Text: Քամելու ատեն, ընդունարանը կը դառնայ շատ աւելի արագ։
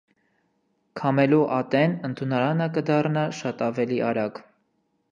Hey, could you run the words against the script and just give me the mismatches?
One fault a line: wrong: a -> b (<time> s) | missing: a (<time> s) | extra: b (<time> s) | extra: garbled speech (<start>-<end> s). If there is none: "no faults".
no faults